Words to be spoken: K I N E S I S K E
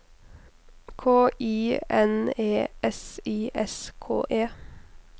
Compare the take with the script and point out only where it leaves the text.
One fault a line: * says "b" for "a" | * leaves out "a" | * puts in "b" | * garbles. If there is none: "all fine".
all fine